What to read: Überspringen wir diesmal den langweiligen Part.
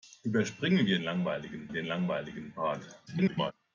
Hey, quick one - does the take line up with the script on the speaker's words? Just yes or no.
no